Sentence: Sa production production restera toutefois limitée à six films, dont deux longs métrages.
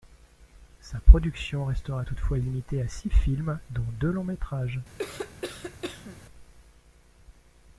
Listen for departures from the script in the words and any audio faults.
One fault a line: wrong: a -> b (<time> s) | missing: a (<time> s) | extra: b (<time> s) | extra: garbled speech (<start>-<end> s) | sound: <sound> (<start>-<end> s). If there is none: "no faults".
missing: production (1.6 s)
sound: cough (5.0-6.3 s)